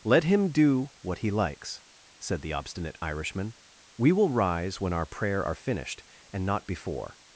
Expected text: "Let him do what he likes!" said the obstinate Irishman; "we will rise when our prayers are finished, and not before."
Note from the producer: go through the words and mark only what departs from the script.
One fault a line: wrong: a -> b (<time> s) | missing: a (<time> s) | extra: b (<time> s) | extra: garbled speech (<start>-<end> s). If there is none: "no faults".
wrong: prayers -> prayer (5.0 s)